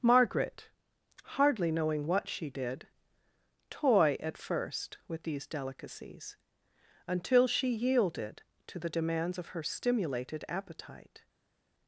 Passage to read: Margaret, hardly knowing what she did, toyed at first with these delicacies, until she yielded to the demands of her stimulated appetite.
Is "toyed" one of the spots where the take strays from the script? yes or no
yes